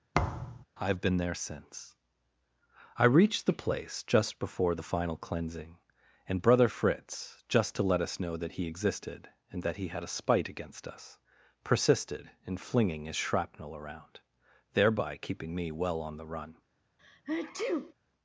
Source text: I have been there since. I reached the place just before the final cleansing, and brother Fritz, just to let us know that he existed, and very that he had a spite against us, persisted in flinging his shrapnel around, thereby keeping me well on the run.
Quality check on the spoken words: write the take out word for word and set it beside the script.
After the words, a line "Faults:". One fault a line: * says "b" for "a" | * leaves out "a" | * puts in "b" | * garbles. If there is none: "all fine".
I have been there since. I reached the place just before the final cleansing, and brother Fritz, just to let us know that he existed, and that he had a spite against us, persisted in flinging his shrapnel around, thereby keeping me well on the run.
Faults:
* leaves out "very"